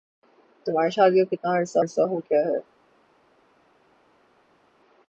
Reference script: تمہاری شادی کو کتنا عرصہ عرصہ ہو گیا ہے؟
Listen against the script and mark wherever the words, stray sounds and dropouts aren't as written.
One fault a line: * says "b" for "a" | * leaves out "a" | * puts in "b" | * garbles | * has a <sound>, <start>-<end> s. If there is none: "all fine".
all fine